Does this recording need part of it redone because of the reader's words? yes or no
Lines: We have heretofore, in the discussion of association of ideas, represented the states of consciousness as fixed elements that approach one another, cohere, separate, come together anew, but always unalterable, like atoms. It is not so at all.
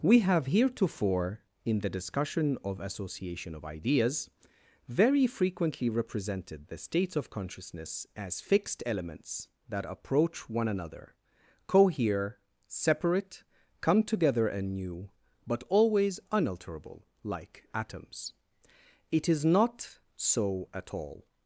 yes